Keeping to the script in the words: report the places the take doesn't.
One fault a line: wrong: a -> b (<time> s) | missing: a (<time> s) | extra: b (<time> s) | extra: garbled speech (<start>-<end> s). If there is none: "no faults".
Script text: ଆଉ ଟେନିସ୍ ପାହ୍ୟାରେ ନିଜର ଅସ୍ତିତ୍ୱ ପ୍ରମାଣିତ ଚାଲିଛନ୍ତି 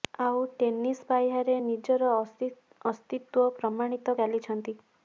no faults